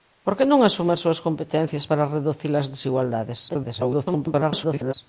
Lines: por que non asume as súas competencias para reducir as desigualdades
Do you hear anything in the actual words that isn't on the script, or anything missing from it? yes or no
yes